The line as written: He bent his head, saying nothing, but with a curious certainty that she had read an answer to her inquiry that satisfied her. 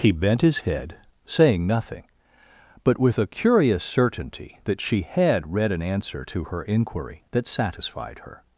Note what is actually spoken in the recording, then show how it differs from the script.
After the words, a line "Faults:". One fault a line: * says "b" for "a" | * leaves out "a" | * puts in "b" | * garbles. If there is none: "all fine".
He bent his head, saying nothing, but with a curious certainty that she had read an answer to her inquiry that satisfied her.
Faults:
all fine